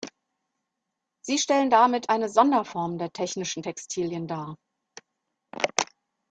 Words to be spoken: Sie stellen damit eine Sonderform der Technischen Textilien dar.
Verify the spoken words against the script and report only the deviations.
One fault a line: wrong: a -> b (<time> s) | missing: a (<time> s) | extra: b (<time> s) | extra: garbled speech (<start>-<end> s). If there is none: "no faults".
no faults